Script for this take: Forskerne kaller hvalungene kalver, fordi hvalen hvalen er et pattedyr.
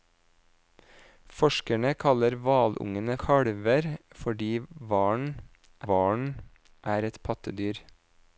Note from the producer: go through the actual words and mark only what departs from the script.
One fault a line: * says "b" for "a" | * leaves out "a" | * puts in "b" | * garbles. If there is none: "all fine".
all fine